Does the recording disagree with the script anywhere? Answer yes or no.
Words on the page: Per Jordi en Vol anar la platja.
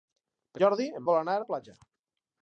no